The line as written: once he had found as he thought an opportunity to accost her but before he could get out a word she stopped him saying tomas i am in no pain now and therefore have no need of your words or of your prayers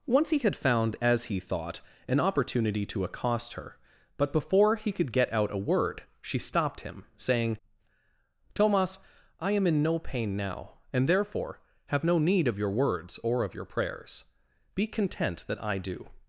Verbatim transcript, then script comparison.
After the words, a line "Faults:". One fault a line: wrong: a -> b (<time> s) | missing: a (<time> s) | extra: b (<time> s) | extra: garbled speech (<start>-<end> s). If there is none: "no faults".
once he had found as he thought an opportunity to accost her but before he could get out a word she stopped him saying tomas i am in no pain now and therefore have no need of your words or of your prayers be content that i do
Faults:
extra: be content that i do (14.7 s)